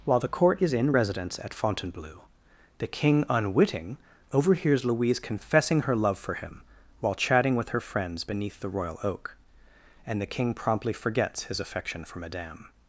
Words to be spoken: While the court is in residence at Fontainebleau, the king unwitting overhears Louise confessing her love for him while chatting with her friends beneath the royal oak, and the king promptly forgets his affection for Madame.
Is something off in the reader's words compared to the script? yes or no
no